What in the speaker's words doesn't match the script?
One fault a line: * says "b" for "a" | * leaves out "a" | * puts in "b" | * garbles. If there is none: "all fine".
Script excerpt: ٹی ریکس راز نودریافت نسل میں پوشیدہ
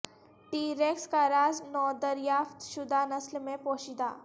* puts in "کا"
* puts in "شدہ"